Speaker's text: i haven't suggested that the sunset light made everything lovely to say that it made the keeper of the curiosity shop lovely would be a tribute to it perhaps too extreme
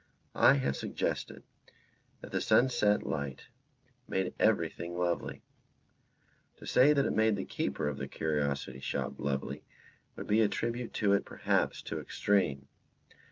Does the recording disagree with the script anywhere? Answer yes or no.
yes